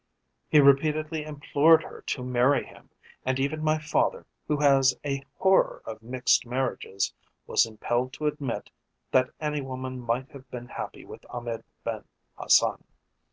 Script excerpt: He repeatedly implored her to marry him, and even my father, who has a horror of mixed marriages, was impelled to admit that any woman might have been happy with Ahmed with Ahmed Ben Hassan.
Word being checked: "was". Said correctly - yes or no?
yes